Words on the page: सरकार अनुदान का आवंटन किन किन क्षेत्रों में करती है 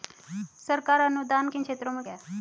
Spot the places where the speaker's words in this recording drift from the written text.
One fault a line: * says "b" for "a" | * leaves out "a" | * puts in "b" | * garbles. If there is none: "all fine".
* leaves out "का आवंटन"
* leaves out "किन"
* leaves out "करती"